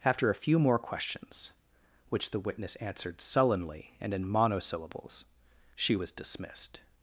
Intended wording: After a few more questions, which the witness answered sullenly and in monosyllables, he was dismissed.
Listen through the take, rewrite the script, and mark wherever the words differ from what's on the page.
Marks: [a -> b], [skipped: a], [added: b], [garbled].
After a few more questions, which the witness answered sullenly and in monosyllables, [he -> she] was dismissed.